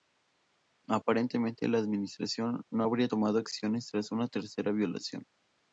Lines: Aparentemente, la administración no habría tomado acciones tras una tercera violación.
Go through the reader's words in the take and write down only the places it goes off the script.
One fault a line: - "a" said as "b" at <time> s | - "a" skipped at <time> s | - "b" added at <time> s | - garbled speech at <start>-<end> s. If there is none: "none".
none